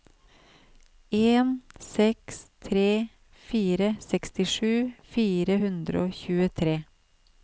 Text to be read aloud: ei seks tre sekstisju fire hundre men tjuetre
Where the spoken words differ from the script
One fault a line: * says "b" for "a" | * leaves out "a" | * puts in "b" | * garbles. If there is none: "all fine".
* says "en" for "ei"
* puts in "fire"
* says "og" for "men"